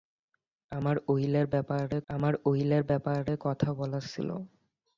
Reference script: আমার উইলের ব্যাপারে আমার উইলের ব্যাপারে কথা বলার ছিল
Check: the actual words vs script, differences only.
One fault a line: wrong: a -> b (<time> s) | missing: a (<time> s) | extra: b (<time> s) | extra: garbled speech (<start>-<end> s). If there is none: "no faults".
no faults